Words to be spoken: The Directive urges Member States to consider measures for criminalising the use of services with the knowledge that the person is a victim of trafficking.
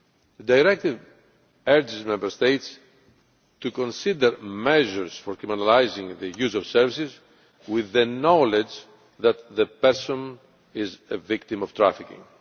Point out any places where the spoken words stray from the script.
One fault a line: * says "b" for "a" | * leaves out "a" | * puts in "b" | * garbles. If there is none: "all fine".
all fine